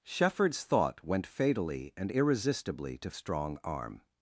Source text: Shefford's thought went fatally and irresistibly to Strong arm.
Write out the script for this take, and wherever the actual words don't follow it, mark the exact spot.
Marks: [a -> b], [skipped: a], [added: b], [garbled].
Shefford's thought went fatally and irresistibly to Strong arm.